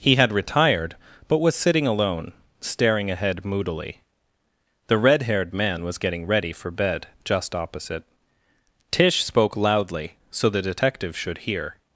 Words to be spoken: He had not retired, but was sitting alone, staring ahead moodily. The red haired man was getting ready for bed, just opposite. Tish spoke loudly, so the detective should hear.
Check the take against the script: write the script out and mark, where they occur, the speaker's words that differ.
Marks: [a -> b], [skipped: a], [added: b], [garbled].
He had [skipped: not] retired, but was sitting alone, staring ahead moodily. The red haired man was getting ready for bed, just opposite. Tish spoke loudly, so the detective should hear.